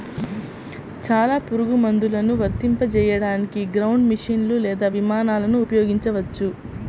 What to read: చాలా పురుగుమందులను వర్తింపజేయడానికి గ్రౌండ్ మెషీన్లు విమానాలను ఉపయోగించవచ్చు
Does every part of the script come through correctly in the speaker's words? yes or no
no